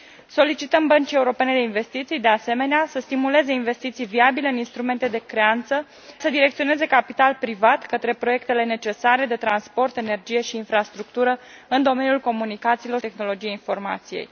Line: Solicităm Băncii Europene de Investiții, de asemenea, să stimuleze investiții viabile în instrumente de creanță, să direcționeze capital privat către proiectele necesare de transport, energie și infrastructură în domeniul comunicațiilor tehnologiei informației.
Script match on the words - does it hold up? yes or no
yes